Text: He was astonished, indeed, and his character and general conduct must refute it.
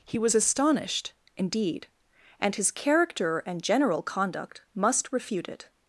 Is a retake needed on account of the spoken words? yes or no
no